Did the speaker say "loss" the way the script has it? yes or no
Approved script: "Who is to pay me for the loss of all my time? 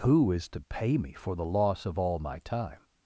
yes